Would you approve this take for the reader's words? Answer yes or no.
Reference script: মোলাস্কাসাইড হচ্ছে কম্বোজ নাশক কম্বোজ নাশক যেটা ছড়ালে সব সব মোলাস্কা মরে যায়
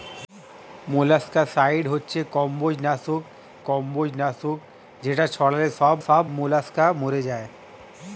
yes